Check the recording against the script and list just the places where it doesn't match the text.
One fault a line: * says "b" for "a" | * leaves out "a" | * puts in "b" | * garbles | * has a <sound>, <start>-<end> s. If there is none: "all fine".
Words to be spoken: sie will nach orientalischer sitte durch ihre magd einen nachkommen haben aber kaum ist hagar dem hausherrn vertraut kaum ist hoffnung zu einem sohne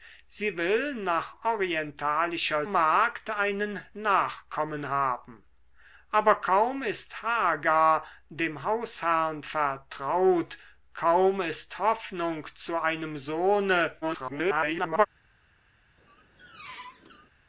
* leaves out "sitte durch ihre"
* garbles
* has a squeak, 16.0-17.3 s